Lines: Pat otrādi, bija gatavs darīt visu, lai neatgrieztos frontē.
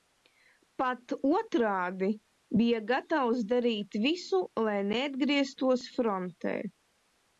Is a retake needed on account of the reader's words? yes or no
no